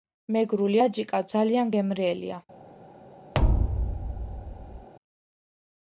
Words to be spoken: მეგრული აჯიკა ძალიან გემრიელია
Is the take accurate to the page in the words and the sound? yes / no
no